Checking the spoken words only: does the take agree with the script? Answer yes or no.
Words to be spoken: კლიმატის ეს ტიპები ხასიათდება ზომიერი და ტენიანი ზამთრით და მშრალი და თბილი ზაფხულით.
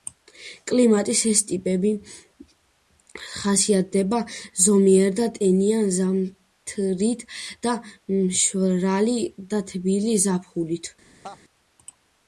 yes